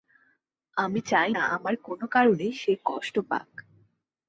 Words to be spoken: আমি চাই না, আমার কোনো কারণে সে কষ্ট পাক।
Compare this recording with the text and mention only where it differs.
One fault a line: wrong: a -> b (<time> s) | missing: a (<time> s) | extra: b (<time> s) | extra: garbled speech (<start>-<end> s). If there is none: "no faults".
no faults